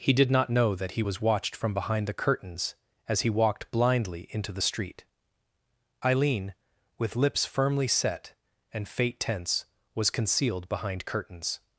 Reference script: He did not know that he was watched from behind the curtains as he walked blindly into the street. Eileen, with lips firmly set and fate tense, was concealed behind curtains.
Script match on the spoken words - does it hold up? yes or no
yes